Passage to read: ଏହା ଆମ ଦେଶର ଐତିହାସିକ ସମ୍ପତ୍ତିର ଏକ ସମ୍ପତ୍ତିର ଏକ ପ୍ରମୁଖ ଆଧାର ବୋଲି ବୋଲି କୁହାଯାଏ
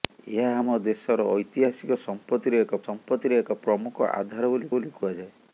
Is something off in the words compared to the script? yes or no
no